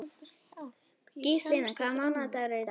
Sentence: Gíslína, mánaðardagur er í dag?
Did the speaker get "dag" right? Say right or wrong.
right